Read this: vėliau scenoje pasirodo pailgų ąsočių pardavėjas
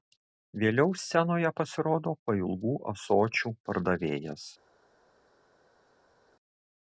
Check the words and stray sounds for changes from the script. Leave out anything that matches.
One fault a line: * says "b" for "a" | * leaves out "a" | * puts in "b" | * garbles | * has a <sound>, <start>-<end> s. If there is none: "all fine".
all fine